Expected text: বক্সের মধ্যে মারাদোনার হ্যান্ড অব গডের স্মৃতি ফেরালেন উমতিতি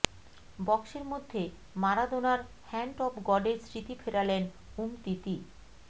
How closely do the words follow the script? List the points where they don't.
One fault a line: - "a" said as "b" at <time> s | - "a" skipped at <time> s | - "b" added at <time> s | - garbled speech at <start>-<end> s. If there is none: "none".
none